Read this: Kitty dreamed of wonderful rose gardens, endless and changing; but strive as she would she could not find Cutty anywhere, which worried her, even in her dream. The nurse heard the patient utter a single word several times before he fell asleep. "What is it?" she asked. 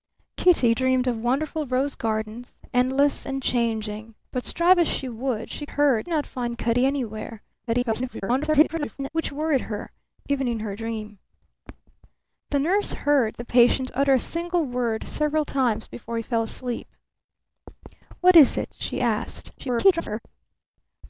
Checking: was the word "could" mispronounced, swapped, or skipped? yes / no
yes